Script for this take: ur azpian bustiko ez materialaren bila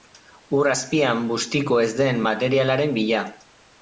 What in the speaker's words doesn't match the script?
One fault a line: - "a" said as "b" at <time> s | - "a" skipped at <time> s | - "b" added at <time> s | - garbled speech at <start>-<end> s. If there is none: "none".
- "den" added at 2.0 s